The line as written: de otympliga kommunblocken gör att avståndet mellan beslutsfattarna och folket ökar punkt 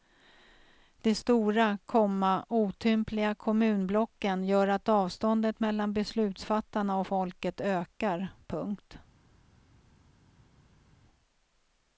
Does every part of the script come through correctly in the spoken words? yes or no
no